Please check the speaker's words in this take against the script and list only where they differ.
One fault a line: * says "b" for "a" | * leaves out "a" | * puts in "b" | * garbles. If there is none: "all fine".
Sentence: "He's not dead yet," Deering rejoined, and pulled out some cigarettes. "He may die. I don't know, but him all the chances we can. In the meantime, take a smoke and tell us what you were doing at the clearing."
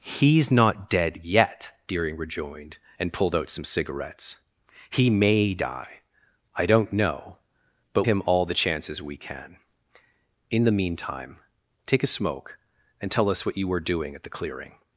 all fine